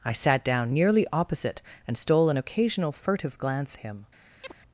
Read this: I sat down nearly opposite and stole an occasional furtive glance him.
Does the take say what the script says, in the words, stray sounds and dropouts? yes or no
no